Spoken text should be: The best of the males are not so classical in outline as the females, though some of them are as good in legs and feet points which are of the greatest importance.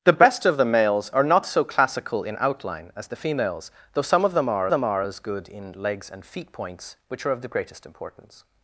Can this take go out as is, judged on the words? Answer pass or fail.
fail